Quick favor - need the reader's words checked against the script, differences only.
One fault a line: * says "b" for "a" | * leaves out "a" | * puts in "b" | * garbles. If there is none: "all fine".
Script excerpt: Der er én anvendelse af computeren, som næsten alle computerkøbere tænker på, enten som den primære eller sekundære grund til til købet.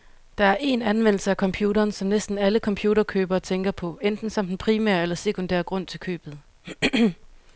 * leaves out "til"